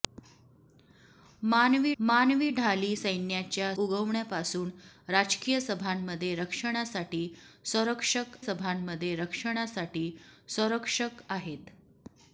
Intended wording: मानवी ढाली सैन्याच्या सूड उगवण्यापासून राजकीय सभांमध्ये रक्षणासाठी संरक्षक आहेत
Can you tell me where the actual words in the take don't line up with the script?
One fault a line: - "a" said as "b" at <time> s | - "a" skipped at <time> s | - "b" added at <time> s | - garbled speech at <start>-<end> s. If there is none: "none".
- "मानवी" added at 2.0 s
- "सूड" skipped at 3.7 s
- "सभांमध्ये रक्षणासाठी संरक्षक" added at 8.4 s